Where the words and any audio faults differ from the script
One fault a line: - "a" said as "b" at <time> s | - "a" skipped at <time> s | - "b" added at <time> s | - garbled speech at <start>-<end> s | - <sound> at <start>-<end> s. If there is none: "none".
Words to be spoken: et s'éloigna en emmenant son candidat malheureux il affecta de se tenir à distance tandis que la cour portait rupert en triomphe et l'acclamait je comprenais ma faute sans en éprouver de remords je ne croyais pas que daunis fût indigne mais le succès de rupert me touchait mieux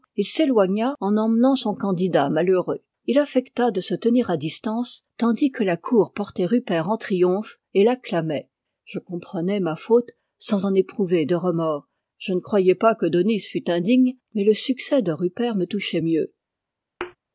- thud at 17.0-17.2 s